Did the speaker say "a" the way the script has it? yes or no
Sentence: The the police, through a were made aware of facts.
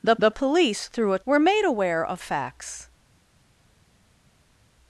yes